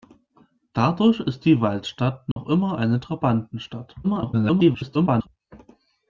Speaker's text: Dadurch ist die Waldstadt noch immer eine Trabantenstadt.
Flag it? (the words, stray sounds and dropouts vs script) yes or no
yes